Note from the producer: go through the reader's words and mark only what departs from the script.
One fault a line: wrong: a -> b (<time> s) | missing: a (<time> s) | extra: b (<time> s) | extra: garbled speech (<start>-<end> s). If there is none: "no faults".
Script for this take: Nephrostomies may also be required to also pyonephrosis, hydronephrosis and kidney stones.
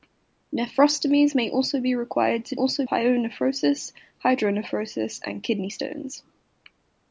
no faults